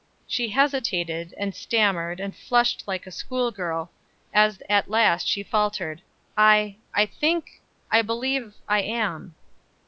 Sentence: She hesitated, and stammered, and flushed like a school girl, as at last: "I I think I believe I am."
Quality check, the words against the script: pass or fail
fail